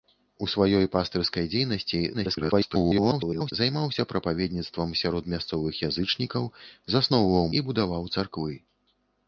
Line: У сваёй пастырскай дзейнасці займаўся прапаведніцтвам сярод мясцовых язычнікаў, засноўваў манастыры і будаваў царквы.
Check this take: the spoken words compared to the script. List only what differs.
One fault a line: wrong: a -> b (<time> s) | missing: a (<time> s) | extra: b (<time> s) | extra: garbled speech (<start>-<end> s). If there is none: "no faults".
extra: garbled speech (2.1-3.5 s)
missing: манастыры (7.5 s)